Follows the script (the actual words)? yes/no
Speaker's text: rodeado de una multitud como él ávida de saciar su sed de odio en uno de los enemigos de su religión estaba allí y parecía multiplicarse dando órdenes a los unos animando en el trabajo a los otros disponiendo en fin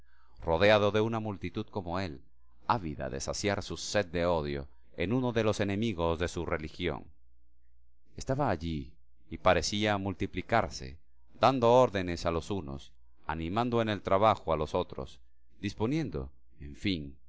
yes